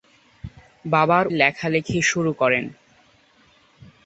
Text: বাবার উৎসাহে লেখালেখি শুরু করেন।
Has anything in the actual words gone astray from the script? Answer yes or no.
yes